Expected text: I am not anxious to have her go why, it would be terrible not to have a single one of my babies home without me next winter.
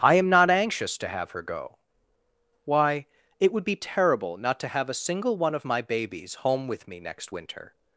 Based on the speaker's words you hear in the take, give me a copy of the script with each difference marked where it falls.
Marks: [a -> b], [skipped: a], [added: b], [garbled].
I am not anxious to have her go why, it would be terrible not to have a single one of my babies home [without -> with] me next winter.